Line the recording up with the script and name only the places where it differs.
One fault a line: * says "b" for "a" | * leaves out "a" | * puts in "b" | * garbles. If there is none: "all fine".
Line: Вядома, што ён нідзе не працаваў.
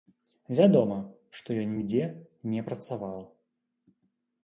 all fine